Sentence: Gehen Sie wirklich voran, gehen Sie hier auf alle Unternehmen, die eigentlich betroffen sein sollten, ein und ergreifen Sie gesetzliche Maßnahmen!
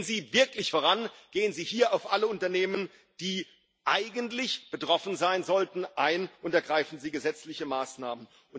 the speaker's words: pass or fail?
pass